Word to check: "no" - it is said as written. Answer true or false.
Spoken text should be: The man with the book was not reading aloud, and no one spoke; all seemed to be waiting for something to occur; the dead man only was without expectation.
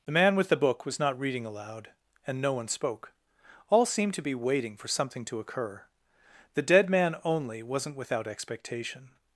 true